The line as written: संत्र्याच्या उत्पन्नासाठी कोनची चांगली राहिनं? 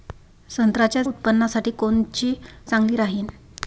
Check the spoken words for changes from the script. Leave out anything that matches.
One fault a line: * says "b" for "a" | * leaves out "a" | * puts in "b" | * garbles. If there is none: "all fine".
all fine